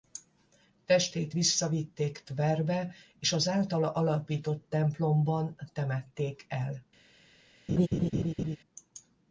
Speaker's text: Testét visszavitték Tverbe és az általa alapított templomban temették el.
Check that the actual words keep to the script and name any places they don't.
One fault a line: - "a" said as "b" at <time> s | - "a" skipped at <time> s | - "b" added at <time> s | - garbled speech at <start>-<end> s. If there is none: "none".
none